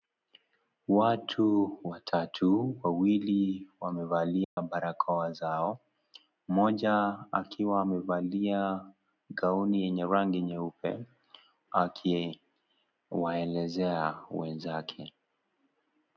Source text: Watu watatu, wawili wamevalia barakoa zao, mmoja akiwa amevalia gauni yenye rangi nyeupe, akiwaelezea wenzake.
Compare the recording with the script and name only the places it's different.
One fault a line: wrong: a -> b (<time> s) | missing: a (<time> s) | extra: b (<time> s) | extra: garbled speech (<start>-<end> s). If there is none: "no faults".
no faults